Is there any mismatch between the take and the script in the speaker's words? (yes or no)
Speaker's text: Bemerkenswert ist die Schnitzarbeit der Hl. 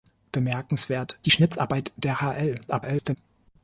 yes